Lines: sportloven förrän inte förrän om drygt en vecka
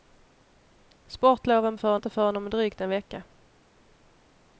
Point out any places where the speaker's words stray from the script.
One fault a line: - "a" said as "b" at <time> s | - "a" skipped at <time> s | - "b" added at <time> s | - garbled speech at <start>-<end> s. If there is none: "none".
none